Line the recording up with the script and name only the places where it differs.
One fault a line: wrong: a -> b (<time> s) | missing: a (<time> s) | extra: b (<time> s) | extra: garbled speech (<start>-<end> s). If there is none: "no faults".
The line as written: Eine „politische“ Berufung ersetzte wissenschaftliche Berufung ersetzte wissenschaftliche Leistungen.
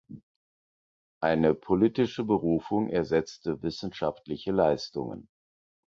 missing: Berufung ersetzte wissenschaftliche (4.5 s)